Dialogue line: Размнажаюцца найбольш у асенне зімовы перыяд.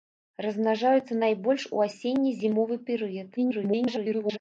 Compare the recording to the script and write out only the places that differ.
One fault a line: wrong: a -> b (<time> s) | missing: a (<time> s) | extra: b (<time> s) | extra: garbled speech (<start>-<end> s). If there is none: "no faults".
extra: garbled speech (3.4-4.4 s)